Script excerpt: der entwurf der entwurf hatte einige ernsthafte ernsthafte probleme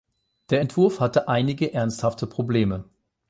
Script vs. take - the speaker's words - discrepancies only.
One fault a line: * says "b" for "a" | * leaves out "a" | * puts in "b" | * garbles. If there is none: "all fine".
* leaves out "der entwurf"
* leaves out "ernsthafte"